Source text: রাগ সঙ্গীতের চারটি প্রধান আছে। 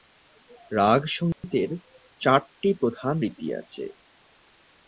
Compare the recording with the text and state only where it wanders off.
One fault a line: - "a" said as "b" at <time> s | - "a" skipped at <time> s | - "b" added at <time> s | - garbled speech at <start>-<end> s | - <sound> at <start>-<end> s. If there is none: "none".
- dropout at 1.3-1.4 s
- "রীতি" added at 3.2 s